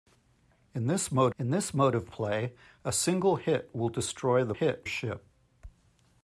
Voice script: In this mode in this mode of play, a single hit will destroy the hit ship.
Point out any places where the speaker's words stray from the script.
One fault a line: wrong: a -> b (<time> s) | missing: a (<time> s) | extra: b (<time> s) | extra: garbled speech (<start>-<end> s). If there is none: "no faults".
no faults